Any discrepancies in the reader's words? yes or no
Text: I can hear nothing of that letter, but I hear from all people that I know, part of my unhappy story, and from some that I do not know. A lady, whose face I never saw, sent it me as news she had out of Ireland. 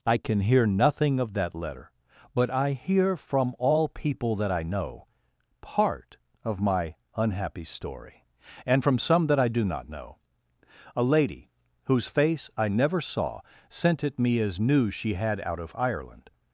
no